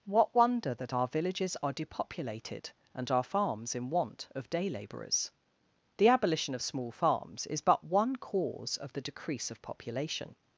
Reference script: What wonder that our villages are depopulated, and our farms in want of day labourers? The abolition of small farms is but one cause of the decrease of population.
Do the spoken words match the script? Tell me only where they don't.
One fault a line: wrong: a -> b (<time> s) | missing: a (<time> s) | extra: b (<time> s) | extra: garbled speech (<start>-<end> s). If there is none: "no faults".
no faults